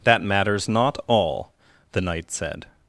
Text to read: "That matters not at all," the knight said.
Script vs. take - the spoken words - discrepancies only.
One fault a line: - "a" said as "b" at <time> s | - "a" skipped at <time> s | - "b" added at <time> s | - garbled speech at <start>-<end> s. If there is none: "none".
- "at" skipped at 1.0 s